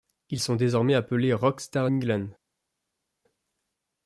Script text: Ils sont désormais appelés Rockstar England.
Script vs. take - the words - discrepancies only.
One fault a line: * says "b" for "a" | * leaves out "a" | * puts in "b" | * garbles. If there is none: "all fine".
all fine